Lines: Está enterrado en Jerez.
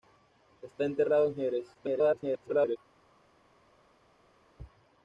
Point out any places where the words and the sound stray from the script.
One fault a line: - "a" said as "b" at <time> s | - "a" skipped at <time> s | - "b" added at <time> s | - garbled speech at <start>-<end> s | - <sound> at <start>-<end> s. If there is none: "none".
- garbled speech at 1.7-2.8 s